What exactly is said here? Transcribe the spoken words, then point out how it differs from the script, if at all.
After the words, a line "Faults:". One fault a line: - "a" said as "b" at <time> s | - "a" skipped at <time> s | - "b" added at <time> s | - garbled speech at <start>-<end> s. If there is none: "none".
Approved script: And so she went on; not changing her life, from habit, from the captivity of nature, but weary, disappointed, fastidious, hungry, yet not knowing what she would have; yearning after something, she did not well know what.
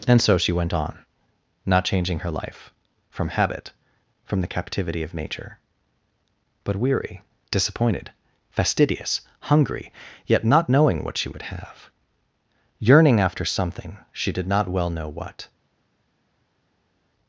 And so she went on; not changing her life, from habit, from the captivity of nature, but weary, disappointed, fastidious, hungry, yet not knowing what she would have; yearning after something, she did not well know what.
Faults:
none